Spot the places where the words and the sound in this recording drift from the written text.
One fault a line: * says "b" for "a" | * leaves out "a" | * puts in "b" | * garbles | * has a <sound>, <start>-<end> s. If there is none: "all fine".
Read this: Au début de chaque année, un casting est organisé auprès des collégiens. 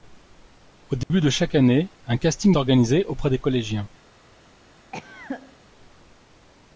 * has a dropout, 1.0-1.1 s
* leaves out "est"
* has a cough, 4.9-5.6 s